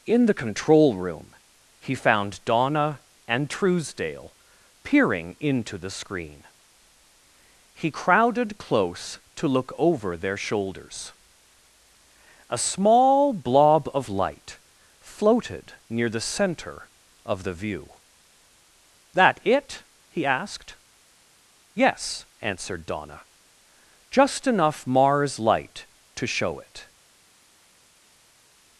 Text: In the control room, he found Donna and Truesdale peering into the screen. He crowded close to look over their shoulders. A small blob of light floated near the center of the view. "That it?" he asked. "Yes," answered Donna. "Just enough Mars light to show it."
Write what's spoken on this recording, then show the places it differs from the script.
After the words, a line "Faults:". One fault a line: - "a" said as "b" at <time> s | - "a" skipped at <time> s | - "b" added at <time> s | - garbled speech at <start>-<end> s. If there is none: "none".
In the control room, he found Donna and Truesdale peering into the screen. He crowded close to look over their shoulders. A small blob of light floated near the center of the view. "That it?" he asked. "Yes," answered Donna. "Just enough Mars light to show it."
Faults:
none